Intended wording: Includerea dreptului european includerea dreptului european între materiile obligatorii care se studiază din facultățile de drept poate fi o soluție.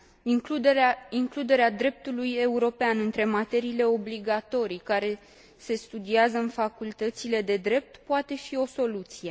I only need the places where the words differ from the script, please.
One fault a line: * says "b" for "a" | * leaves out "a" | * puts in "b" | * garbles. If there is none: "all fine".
* leaves out "includerea dreptului european"
* says "în" for "din"